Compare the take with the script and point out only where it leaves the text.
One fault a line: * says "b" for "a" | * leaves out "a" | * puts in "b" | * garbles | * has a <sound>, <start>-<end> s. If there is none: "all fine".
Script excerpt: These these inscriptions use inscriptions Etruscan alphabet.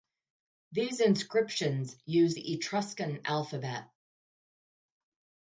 * leaves out "these"
* says "the" for "inscriptions"